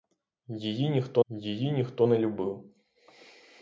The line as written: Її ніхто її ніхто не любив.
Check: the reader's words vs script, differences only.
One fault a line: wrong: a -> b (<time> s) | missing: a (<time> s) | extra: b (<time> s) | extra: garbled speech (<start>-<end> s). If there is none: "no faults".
no faults